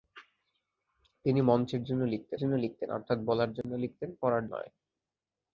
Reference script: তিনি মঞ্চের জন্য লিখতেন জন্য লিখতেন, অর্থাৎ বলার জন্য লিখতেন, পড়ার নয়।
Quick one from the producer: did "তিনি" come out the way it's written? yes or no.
yes